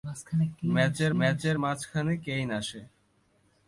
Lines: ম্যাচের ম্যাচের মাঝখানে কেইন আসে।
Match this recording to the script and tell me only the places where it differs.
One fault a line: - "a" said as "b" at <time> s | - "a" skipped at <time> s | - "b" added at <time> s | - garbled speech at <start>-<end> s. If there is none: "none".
none